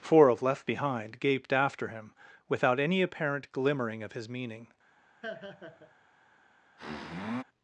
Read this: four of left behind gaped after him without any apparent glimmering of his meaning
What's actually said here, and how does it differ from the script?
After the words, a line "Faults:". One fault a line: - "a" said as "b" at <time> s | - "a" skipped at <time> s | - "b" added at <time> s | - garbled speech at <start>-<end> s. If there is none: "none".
four of left behind gaped after him without any apparent glimmering of his meaning
Faults:
none